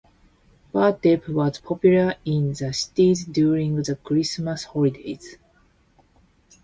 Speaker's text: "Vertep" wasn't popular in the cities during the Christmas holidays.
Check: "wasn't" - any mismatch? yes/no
yes